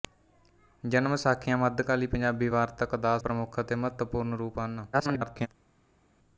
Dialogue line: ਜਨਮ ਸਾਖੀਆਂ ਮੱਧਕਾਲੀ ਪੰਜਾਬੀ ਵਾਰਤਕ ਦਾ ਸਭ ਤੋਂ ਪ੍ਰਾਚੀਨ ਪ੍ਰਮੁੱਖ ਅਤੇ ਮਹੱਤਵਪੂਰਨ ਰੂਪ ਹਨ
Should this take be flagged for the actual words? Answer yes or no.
yes